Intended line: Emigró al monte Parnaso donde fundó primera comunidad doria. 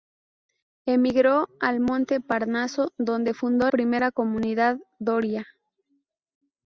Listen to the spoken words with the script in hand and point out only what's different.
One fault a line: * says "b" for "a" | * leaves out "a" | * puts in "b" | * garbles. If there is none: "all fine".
all fine